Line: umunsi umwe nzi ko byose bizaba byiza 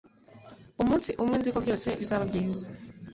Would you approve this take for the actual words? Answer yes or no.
yes